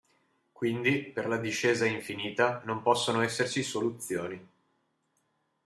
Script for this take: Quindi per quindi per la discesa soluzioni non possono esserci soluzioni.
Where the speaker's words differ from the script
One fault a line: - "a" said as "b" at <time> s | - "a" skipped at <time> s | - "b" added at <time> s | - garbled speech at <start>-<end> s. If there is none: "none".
- "quindi per" skipped at 1.3 s
- "soluzioni" said as "infinita" at 1.9 s